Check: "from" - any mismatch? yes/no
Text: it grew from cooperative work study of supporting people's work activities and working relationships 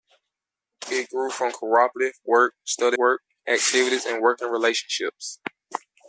no